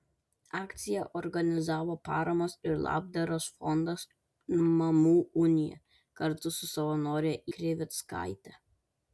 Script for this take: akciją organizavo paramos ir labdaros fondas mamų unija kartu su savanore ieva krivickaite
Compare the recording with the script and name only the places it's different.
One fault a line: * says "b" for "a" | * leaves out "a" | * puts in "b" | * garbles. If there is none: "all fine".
* leaves out "ieva"